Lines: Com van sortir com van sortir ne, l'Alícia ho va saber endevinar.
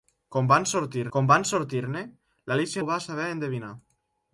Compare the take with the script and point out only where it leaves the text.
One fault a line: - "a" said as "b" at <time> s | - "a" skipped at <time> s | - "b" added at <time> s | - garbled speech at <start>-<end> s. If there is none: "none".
none